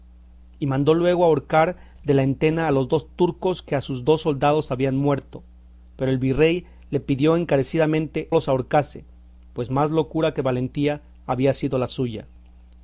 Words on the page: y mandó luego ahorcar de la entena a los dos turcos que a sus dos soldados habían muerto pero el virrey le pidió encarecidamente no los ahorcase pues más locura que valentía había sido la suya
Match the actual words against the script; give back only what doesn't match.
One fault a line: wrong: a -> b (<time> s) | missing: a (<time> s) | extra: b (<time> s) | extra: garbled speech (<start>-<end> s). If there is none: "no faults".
missing: no (8.3 s)